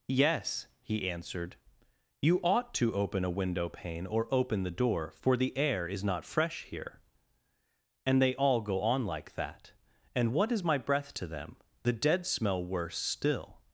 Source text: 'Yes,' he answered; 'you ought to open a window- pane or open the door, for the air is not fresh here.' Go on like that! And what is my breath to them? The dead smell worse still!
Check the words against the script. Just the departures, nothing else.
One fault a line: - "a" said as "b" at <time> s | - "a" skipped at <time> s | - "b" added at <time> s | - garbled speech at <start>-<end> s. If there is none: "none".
- "And they all" added at 8.0 s